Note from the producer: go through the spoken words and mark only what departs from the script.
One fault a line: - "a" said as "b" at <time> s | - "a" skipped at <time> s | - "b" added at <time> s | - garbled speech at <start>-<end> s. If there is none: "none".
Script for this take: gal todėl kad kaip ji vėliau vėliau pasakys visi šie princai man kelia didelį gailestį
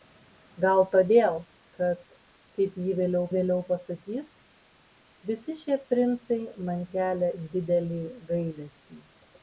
none